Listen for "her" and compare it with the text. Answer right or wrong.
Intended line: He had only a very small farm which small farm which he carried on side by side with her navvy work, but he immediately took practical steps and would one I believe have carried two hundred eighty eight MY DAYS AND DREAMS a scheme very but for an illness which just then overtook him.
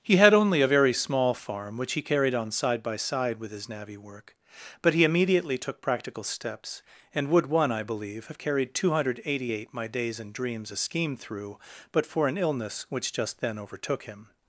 wrong